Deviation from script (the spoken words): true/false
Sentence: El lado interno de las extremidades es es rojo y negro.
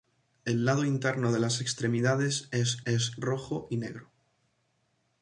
false